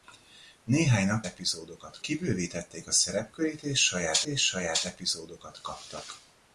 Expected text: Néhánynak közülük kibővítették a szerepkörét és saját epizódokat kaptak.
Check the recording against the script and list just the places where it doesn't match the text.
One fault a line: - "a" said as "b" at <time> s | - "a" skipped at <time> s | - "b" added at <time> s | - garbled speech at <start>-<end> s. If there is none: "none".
- "közülük" said as "epizódokat" at 1.2 s
- "és saját" added at 4.2 s